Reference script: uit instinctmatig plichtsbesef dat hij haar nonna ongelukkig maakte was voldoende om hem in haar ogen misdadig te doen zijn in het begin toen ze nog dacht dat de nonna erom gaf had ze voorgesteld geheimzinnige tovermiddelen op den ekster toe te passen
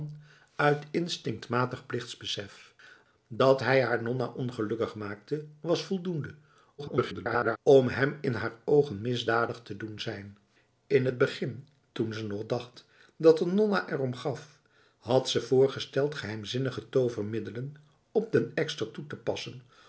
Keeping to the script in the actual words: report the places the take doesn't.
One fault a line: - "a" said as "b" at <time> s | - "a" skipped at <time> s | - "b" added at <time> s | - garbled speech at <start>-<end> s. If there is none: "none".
- garbled speech at 6.8-7.6 s